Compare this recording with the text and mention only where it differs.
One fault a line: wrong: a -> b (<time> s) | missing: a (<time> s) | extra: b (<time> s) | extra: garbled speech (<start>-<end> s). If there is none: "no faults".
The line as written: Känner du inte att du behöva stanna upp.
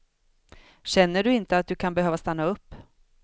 extra: kan (1.8 s)